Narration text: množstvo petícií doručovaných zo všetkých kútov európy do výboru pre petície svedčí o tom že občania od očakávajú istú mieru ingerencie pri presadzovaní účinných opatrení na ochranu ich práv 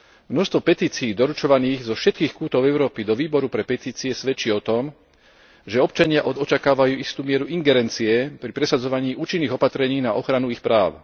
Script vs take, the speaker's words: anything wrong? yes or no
no